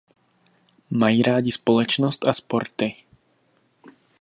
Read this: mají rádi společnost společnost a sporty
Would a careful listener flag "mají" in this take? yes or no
no